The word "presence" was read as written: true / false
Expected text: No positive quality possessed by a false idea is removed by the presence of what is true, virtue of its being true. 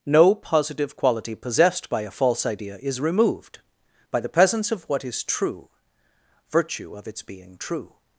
true